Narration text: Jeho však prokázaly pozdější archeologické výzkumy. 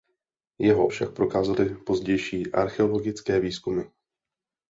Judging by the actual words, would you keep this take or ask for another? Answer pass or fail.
pass